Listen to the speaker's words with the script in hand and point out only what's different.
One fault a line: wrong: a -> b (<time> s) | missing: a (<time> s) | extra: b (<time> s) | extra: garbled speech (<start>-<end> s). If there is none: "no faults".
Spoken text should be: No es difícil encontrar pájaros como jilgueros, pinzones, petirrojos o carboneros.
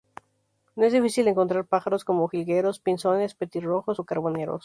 no faults